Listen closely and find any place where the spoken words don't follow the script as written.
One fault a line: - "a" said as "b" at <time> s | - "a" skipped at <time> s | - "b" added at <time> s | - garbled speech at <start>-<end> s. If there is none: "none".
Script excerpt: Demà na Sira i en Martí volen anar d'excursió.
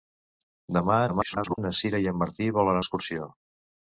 - garbled speech at 1.1-1.6 s
- "anar" skipped at 2.8 s